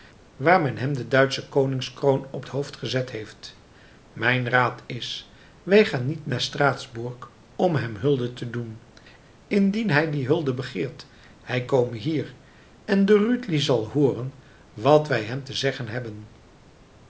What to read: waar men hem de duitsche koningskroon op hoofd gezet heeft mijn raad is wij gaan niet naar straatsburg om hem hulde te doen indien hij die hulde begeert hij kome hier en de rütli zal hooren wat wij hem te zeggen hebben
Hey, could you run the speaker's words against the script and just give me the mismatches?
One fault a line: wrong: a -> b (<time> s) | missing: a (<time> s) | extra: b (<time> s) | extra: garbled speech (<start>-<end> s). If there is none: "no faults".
no faults